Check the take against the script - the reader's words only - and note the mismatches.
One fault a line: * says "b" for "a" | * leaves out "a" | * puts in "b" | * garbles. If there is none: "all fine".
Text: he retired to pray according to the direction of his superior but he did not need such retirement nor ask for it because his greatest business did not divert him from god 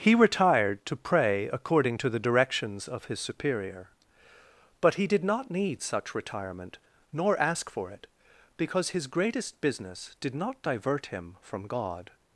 * says "directions" for "direction"